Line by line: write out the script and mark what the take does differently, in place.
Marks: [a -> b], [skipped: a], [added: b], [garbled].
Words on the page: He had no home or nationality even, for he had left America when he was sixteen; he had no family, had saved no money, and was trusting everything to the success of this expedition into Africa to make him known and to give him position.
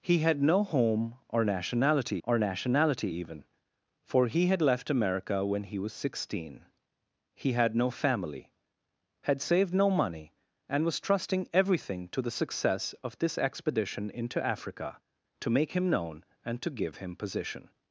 He had no home or nationality [added: or nationality] even, for he had left America when he was sixteen; he had no family, had saved no money, and was trusting everything to the success of this expedition into Africa to make him known and to give him position.